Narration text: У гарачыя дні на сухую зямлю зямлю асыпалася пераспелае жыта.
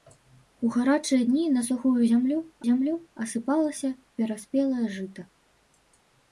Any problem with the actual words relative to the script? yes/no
no